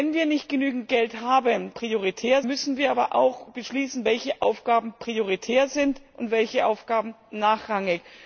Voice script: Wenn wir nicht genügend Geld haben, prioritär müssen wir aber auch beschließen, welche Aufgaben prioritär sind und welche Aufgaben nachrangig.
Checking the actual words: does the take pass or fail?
pass